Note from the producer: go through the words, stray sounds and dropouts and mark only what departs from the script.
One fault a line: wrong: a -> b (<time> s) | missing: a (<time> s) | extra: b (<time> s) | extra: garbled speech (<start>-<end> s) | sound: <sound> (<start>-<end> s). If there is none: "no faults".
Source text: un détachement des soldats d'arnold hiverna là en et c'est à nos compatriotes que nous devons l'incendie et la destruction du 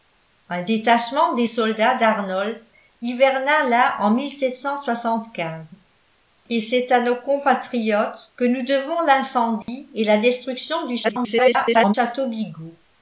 sound: dropout (9.6-9.7 s)
extra: garbled speech (11.0-11.9 s)